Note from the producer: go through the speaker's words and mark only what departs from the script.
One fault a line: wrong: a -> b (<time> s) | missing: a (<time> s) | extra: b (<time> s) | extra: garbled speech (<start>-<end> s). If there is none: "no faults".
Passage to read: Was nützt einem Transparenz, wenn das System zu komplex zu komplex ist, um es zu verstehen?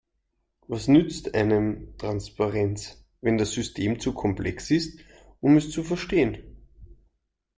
missing: zu komplex (4.7 s)